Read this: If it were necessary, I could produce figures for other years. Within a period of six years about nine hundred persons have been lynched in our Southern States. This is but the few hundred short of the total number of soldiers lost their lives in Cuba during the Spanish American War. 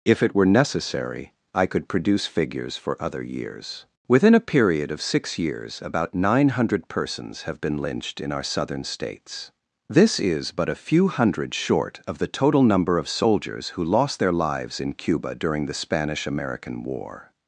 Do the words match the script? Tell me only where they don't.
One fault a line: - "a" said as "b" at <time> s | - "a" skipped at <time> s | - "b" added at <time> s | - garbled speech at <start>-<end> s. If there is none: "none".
- "the" said as "a" at 10.7 s
- "who" added at 13.7 s